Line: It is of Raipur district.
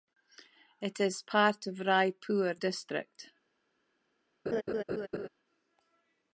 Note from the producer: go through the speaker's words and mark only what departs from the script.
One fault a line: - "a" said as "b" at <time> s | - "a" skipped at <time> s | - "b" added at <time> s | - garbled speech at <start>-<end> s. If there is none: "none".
- "part" added at 1.2 s